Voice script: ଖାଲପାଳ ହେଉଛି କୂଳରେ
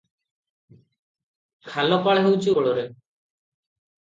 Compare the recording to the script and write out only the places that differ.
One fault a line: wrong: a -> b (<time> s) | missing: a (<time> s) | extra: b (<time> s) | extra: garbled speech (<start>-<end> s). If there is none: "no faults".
no faults